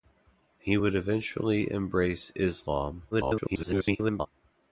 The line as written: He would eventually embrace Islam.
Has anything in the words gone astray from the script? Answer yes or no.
yes